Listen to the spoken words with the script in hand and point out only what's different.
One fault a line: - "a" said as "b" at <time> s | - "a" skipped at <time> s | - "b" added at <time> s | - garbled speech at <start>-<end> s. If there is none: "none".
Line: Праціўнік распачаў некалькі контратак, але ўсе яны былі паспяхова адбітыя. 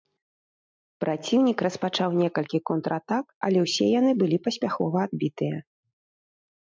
none